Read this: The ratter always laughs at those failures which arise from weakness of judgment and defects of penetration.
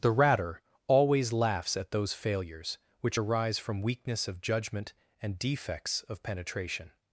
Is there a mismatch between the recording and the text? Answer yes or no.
no